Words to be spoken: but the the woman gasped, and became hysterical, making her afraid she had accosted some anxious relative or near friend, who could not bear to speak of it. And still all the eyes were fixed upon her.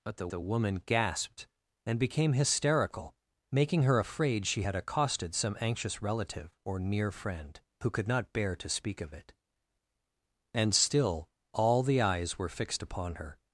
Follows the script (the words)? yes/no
yes